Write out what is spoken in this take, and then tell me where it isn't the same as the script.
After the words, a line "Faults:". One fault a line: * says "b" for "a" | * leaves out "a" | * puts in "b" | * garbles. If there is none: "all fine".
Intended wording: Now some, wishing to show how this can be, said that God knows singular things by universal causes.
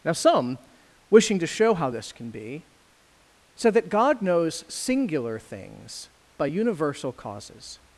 Now some, wishing to show how this can be, said that God knows singular things by universal causes.
Faults:
all fine